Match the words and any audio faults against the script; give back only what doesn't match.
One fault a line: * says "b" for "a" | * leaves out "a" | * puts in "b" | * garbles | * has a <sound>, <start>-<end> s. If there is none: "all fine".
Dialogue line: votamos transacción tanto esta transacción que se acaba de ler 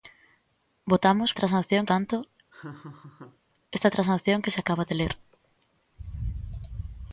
* has a laugh, 2.5-3.4 s